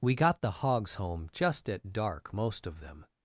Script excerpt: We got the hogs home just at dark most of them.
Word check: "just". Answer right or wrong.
right